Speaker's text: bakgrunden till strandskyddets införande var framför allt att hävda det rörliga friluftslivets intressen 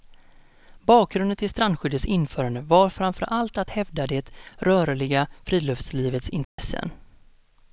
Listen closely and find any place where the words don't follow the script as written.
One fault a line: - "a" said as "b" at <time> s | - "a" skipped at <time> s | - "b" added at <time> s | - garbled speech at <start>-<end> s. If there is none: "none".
none